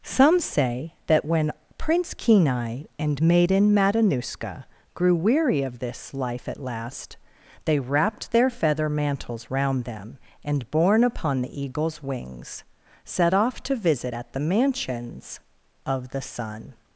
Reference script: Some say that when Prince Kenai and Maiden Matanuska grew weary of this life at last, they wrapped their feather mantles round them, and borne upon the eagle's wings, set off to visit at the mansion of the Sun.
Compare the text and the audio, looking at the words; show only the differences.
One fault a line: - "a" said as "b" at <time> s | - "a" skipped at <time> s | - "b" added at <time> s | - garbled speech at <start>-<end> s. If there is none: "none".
- "mansion" said as "mansions" at 14.4 s